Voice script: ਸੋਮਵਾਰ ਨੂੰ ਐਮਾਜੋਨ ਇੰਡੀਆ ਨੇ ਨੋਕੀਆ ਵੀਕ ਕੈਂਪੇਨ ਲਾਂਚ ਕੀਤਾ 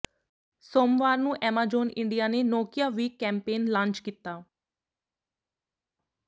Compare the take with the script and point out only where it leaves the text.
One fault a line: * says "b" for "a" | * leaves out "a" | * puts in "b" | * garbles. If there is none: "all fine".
all fine